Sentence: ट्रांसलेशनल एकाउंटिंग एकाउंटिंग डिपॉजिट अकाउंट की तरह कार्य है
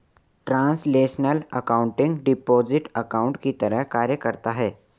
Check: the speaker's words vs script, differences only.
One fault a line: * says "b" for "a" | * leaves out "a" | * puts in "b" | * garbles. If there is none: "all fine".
* leaves out "एकाउंटिंग"
* puts in "करता"